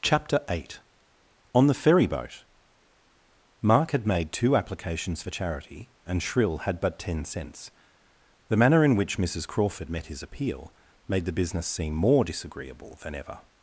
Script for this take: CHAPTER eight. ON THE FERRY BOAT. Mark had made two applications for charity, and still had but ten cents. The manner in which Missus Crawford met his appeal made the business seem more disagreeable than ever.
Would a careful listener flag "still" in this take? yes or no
yes